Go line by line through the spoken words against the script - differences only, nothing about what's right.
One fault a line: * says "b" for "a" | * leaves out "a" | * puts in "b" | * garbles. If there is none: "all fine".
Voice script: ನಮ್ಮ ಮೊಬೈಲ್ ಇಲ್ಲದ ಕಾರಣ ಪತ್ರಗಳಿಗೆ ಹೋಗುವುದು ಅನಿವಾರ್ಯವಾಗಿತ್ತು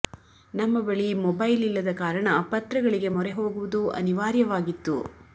* puts in "ಬಳಿ"
* puts in "ಮೊರೆ"